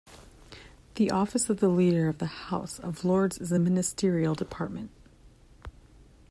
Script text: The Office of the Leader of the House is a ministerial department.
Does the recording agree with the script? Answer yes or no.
no